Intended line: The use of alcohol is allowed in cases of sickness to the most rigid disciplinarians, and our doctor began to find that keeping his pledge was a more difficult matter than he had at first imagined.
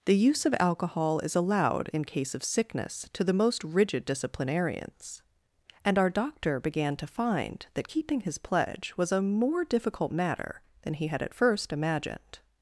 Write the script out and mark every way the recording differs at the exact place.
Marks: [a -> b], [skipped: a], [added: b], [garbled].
The use of alcohol is allowed in [cases -> case] of sickness to the most rigid disciplinarians, and our doctor began to find that keeping his pledge was a more difficult matter than he had at first imagined.